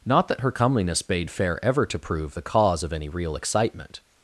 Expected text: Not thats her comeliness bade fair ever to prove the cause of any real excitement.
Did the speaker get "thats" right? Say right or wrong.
wrong